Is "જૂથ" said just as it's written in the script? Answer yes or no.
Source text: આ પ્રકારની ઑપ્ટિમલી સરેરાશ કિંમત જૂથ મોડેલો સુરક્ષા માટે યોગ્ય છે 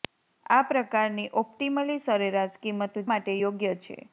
no